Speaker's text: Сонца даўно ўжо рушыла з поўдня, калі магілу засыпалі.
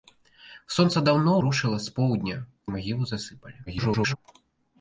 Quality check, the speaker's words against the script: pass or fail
fail